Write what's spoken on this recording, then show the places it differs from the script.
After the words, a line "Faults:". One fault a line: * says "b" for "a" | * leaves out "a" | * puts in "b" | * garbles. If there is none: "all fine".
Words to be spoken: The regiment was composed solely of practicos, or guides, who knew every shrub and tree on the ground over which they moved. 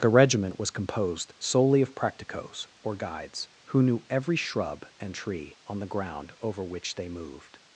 The regiment was composed solely of practicos, or guides, who knew every shrub and tree on the ground over which they moved.
Faults:
all fine